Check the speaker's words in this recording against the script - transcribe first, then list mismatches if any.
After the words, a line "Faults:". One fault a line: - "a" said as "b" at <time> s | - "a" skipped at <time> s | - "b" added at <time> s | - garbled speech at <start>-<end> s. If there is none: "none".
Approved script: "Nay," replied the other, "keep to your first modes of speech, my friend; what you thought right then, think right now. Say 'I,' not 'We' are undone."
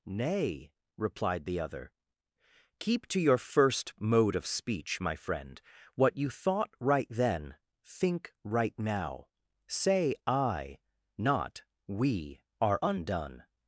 "Nay," replied the other, "keep to your first mode of speech, my friend; what you thought right then, think right now. Say 'I,' not 'We' are undone."
Faults:
- "modes" said as "mode" at 4.0 s